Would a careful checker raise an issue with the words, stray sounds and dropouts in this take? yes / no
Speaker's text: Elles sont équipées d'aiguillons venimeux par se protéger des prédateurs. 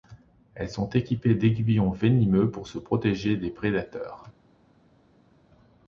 yes